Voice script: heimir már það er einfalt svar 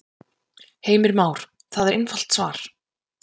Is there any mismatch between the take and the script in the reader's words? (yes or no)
no